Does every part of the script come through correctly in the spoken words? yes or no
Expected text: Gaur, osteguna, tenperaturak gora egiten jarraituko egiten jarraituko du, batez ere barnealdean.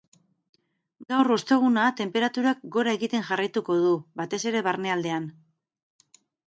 no